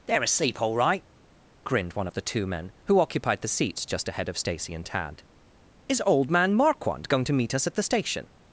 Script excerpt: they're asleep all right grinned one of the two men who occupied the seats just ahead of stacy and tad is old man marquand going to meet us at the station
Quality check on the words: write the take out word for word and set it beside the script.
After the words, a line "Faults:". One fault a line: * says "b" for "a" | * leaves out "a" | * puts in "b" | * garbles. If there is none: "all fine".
they're asleep all right grinned one of the two men who occupied the seats just ahead of stacy and tad is old man marquand going to meet us at the station
Faults:
all fine